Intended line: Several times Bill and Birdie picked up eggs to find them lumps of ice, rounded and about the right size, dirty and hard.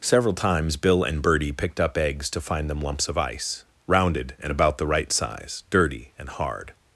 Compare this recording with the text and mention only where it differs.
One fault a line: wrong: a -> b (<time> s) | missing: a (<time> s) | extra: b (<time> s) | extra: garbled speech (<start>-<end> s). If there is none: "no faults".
no faults